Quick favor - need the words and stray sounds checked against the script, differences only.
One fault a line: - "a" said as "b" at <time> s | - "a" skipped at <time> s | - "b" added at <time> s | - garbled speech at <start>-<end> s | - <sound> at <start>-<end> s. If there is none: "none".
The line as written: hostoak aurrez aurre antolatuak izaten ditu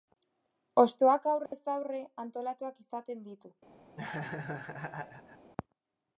- dropout at 1.5-1.5 s
- laugh at 4.0-5.5 s